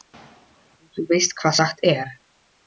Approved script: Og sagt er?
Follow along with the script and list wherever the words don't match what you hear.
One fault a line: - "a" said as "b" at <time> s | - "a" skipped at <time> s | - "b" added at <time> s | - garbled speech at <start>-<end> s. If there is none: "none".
- "þú veist hvað" added at 0.9 s